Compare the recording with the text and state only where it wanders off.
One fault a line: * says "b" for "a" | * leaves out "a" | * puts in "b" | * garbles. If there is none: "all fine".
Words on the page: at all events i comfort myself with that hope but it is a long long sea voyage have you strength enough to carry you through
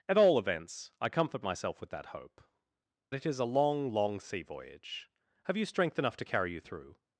* leaves out "but"